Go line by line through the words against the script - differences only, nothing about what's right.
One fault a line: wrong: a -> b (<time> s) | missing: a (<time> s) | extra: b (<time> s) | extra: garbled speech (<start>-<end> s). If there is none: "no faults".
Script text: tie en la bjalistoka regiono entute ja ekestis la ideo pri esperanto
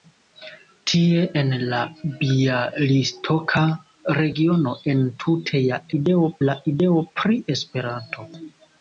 wrong: ekestis -> ideo (6.0 s)